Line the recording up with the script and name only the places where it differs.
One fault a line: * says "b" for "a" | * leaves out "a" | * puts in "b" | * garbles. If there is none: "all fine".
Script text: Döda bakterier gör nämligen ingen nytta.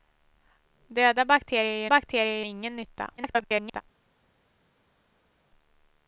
* says "bakterier" for "nämligen"
* garbles